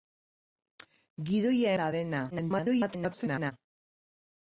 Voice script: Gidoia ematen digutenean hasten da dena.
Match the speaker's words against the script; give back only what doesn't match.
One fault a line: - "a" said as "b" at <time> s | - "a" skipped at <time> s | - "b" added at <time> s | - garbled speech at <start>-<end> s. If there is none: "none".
- "ematen digutenean hasten" skipped at 1.8 s
- garbled speech at 2.3-3.5 s